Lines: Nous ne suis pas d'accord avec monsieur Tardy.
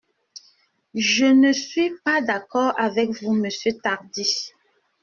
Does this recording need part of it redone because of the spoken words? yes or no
yes